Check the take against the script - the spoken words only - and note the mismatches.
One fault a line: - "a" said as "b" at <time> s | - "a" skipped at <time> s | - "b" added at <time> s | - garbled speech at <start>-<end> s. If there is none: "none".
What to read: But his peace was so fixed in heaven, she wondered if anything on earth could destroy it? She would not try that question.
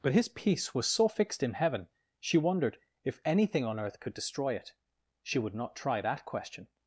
none